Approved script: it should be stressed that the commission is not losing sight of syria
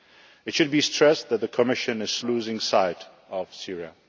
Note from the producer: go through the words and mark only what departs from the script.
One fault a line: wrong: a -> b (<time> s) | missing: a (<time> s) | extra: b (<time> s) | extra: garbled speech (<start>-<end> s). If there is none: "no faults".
missing: not (2.2 s)